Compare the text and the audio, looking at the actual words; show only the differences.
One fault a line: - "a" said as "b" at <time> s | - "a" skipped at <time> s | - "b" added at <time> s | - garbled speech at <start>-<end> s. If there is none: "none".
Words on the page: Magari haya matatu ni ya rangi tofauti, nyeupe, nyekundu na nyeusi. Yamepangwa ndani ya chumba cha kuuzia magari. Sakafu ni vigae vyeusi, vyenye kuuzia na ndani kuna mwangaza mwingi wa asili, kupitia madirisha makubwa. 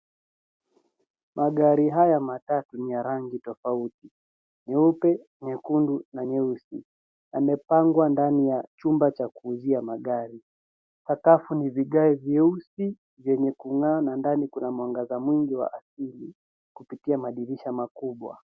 - "kuuzia" said as "kung'aa" at 13.5 s